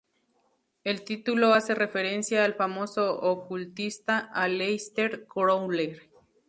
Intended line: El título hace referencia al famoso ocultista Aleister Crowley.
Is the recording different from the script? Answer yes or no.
no